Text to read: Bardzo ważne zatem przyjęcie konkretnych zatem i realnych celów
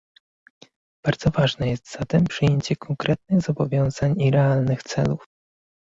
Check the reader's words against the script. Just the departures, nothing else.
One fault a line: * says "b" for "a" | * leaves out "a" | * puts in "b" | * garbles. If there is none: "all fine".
* puts in "jest"
* says "zobowiązań" for "zatem"